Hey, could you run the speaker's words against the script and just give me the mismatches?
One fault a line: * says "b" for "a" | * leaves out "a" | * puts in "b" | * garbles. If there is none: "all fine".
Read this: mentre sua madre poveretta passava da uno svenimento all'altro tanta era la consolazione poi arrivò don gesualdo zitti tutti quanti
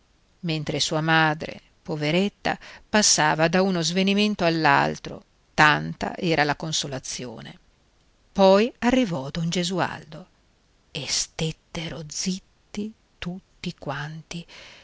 * puts in "e stettero"